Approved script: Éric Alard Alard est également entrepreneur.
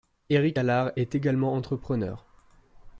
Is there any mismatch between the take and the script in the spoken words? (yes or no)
yes